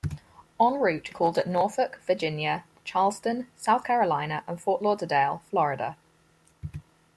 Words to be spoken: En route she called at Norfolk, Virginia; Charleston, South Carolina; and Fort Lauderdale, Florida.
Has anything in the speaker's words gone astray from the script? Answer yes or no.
yes